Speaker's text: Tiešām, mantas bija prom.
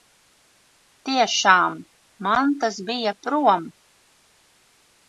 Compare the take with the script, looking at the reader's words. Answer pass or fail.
pass